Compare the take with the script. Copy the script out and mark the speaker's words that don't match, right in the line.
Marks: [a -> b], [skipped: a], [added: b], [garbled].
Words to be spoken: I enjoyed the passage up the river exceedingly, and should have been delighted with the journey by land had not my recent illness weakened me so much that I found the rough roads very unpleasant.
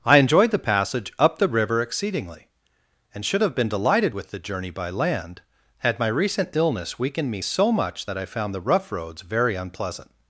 I enjoyed the passage up the river exceedingly, and should have been delighted with the journey by land had [skipped: not] my recent illness weakened me so much that I found the rough roads very unpleasant.